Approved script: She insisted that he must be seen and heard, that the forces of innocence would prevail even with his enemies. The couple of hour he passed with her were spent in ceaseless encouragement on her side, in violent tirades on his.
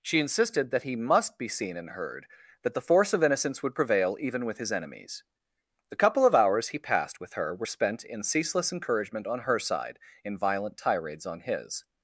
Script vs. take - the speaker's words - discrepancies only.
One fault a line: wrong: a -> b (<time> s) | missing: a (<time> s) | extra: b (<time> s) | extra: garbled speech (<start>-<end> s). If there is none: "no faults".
wrong: forces -> force (2.8 s)
wrong: hour -> hours (6.3 s)